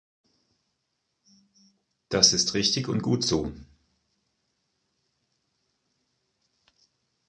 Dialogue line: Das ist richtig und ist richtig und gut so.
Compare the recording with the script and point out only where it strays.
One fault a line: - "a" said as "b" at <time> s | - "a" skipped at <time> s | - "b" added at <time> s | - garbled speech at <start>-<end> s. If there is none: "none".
- "ist richtig und" skipped at 3.0 s